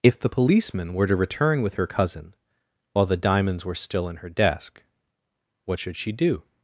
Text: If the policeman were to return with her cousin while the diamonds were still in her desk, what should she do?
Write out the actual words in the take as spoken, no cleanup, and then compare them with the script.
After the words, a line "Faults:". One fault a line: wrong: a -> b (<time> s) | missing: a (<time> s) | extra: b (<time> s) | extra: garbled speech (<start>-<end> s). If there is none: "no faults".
If the policeman were to return with her cousin while the diamonds were still in her desk, what should she do?
Faults:
no faults